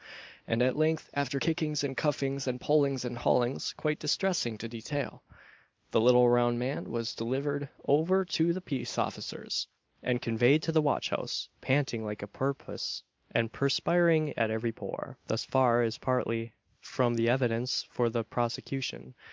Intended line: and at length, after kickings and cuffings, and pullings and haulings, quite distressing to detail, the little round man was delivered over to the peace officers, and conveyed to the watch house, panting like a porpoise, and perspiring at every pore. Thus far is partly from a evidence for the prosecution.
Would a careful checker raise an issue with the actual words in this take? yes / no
yes